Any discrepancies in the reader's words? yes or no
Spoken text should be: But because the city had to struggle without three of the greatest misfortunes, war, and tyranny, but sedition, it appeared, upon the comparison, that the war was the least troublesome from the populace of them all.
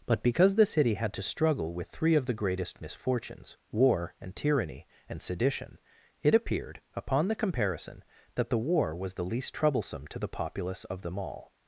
yes